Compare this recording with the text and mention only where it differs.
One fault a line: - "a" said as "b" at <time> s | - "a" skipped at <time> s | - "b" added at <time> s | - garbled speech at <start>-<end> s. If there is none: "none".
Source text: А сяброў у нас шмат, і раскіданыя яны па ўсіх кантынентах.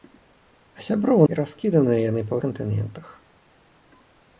- "нас шмат" skipped at 1.3 s
- "ўсіх" skipped at 2.4 s